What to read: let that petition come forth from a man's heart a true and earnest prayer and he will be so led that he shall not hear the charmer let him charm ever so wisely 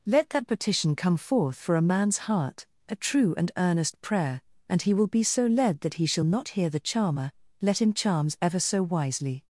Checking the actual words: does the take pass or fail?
fail